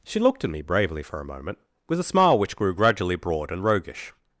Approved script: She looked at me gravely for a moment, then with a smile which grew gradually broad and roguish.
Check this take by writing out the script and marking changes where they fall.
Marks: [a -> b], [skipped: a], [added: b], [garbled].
She looked at me [gravely -> bravely] for a moment, [skipped: then] with a smile which grew gradually broad and roguish.